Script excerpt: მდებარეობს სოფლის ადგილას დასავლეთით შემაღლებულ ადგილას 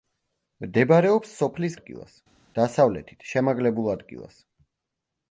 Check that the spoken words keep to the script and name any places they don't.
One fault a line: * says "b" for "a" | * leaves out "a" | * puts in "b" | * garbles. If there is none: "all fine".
all fine